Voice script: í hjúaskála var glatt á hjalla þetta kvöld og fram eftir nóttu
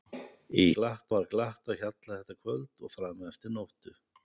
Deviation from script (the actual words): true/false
true